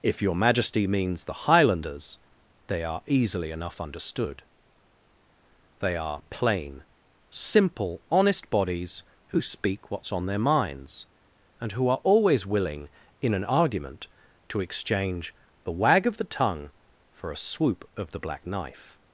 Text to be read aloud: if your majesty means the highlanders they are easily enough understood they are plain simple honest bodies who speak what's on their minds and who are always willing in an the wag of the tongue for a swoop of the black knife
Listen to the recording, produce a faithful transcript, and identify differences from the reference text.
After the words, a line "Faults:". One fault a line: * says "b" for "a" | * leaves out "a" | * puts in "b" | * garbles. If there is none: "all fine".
if your majesty means the highlanders they are easily enough understood they are plain simple honest bodies who speak what's on their minds and who are always willing in an argument to exchange the wag of the tongue for a swoop of the black knife
Faults:
* puts in "argument to exchange"